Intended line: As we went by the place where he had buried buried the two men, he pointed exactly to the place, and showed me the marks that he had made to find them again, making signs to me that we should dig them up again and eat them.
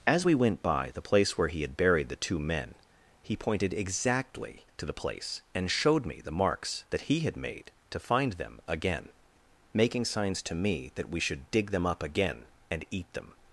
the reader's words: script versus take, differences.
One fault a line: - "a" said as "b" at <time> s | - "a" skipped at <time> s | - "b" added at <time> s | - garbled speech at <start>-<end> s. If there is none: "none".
- "buried" skipped at 2.1 s